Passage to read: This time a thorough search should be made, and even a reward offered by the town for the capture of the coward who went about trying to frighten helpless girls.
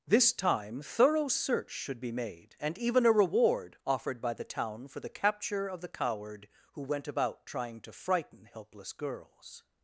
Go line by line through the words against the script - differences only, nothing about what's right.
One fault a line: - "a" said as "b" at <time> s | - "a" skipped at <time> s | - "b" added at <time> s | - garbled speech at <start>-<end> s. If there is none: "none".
- "a" skipped at 0.8 s